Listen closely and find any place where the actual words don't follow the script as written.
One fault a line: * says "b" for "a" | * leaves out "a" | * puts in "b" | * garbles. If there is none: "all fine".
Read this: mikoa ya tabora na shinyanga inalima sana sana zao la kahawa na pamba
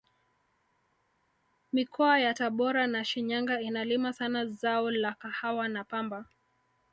* leaves out "sana"